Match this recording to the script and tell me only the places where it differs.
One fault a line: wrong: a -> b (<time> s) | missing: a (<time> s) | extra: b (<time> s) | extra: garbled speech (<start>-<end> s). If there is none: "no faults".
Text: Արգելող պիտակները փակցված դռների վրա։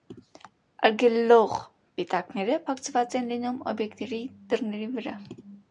extra: են լինում օբյեկտների (3.2 s)